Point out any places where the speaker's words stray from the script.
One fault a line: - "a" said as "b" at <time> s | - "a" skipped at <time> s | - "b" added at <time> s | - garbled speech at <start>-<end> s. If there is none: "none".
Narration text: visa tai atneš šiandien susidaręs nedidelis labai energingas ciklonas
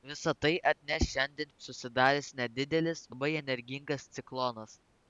none